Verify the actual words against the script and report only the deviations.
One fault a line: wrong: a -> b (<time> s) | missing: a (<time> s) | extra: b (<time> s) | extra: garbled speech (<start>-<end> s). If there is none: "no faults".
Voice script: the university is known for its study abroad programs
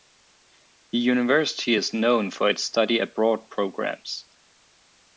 no faults